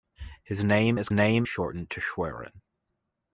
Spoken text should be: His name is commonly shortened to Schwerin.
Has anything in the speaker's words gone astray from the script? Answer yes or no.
yes